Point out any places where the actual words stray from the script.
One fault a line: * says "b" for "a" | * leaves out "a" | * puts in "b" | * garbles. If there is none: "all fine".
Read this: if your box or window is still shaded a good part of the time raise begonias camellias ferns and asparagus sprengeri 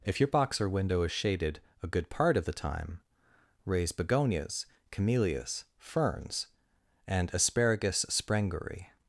* leaves out "still"